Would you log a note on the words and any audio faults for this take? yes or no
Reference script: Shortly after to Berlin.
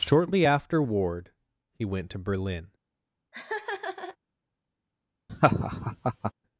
yes